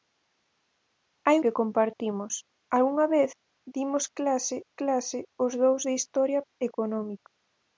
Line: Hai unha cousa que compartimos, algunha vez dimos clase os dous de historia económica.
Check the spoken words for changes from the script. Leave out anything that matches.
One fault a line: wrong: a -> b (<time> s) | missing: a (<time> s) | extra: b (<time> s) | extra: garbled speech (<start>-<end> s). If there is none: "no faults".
missing: unha cousa (1.4 s)
extra: clase (4.8 s)